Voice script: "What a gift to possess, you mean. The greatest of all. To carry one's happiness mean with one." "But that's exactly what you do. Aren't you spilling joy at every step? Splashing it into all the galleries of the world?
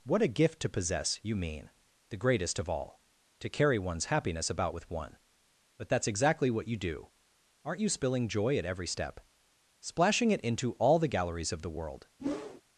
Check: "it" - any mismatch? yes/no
no